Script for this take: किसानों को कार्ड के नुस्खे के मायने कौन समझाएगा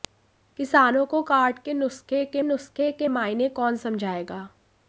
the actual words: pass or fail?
fail